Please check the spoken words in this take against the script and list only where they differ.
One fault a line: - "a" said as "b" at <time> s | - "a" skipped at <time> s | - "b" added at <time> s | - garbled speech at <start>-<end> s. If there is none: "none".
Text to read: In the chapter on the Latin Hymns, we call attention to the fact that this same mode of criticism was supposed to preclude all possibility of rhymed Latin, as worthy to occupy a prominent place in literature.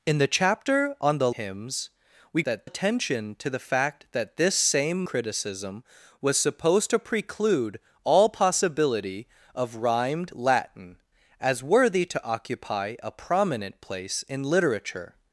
- "Latin" skipped at 1.3 s
- "call" said as "that" at 2.4 s
- "mode of" skipped at 5.0 s